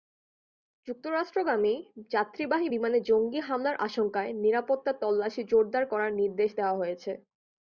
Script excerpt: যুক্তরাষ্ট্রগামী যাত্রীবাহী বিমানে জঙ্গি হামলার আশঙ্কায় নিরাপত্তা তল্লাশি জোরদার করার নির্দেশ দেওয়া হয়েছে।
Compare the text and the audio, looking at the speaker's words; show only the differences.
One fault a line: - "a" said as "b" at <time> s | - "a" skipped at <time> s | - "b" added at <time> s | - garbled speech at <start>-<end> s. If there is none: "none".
none